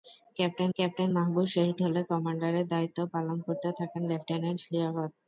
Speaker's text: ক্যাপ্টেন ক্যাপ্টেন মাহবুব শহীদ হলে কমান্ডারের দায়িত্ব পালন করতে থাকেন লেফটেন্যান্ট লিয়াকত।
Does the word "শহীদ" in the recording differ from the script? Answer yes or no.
no